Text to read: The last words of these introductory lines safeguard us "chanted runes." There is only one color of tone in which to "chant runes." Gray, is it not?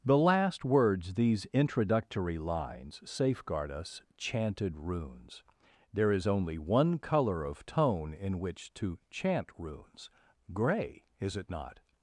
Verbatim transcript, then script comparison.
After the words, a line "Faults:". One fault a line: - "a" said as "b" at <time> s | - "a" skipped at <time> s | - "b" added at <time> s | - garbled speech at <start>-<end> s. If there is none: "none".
The last words these introductory lines safeguard us "chanted runes." There is only one color of tone in which to "chant runes." Gray, is it not?
Faults:
- "of" skipped at 1.1 s